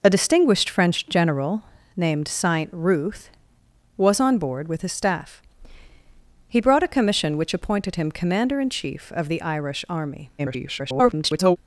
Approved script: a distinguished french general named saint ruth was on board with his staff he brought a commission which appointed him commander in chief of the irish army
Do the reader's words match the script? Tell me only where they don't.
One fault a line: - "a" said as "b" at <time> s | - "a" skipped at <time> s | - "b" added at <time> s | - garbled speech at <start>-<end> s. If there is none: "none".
- garbled speech at 10.4-11.6 s